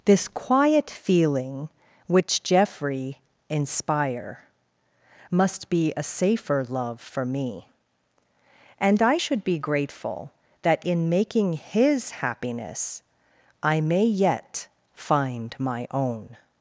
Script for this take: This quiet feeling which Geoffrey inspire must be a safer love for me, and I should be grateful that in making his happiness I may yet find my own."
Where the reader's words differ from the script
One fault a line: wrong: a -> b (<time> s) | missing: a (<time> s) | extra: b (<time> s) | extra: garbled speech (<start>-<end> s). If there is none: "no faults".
no faults